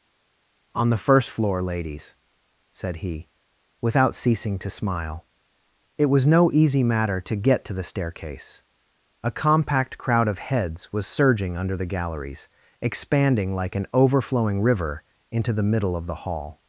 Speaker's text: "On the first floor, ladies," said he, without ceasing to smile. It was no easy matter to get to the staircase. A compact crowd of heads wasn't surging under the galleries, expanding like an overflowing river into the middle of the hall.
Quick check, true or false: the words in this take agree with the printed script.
false